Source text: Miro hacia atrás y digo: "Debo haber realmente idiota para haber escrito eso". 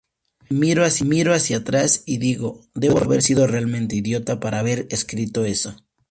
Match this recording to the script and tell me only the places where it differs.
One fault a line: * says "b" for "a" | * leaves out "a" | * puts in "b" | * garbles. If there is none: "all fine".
* puts in "sido"